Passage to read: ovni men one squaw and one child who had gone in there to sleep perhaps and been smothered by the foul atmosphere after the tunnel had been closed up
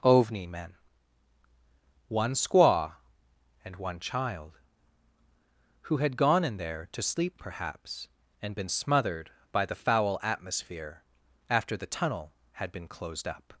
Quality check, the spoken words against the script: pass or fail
pass